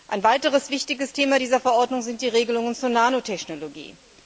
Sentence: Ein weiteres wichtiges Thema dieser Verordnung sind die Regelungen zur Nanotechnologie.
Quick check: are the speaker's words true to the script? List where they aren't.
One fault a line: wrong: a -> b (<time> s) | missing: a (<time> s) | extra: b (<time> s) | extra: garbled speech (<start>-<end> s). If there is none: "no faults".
no faults